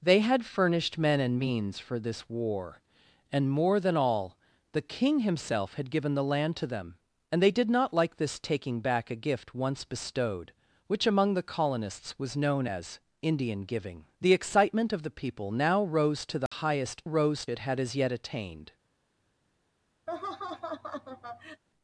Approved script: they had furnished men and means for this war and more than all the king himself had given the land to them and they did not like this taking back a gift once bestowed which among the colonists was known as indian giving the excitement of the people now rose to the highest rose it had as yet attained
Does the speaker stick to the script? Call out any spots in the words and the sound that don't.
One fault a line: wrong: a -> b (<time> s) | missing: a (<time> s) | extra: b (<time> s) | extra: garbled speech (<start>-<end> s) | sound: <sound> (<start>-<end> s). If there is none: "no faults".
sound: dropout (16.5-16.5 s)
sound: laugh (20.1-21.6 s)